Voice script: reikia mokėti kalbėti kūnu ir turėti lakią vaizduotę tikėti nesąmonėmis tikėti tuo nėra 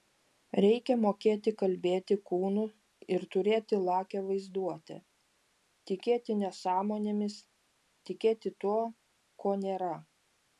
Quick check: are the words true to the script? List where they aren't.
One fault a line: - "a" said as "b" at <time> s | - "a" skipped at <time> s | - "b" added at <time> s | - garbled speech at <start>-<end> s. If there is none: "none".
- "ko" added at 9.5 s